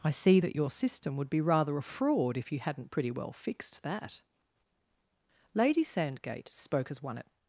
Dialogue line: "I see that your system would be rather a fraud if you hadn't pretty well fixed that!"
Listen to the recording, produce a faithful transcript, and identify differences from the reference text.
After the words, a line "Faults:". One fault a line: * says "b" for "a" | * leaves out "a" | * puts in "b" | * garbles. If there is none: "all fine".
"I see that your system would be rather a fraud if you hadn't pretty well fixed that!" Lady Sandgate spoke as one at
Faults:
* puts in "Lady Sandgate spoke as one at"